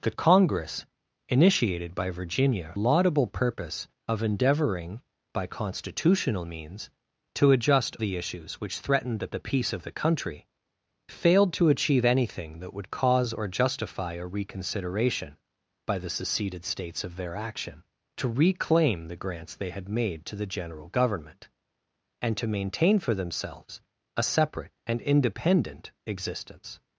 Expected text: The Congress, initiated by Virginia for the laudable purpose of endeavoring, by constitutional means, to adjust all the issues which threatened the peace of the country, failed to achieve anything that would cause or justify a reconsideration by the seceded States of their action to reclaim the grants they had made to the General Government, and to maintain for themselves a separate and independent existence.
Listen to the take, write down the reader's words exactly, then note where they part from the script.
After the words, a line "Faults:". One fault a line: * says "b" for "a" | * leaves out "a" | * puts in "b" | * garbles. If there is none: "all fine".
The Congress, initiated by Virginia laudable purpose of endeavoring, by constitutional means, to adjust the issues which threatened the the peace of the country, failed to achieve anything that would cause or justify a reconsideration by the seceded States of their action to reclaim the grants they had made to the General Government, and to maintain for themselves a separate and independent existence.
Faults:
* leaves out "for the"
* leaves out "all"
* puts in "the"